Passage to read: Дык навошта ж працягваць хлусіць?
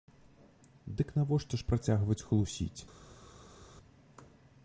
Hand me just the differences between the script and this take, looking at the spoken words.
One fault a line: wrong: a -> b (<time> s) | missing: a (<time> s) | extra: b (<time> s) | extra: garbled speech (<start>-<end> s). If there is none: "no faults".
no faults